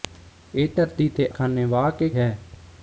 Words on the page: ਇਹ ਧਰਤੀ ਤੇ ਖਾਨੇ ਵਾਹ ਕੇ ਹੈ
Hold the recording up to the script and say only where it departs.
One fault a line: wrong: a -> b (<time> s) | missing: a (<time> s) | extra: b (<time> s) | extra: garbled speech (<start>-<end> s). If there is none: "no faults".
no faults